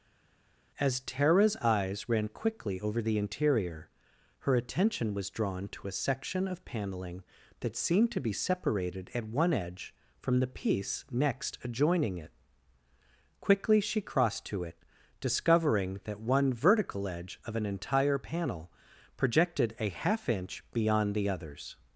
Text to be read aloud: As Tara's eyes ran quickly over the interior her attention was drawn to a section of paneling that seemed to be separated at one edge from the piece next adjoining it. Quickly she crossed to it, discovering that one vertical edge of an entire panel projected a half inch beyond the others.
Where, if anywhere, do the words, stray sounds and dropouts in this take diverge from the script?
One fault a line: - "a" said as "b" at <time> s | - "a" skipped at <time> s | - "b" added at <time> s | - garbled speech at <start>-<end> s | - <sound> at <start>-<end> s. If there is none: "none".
none